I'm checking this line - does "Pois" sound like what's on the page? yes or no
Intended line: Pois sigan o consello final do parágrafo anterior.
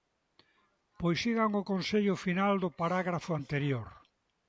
yes